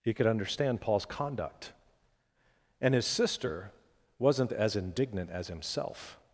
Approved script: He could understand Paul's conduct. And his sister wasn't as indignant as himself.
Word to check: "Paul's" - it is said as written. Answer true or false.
true